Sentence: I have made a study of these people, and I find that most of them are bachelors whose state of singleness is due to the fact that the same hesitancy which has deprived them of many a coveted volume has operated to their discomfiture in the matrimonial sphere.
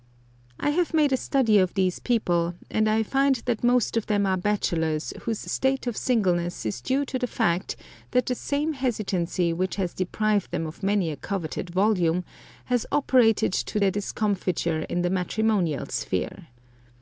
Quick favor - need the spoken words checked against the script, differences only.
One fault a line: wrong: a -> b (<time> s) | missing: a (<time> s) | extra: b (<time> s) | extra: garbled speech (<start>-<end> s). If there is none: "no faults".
no faults